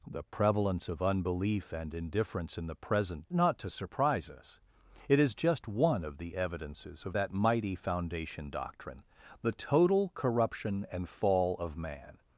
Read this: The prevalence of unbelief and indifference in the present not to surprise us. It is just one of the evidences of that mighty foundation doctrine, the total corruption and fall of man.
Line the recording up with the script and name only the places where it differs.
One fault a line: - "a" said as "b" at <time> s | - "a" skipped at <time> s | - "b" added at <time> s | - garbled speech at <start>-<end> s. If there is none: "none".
none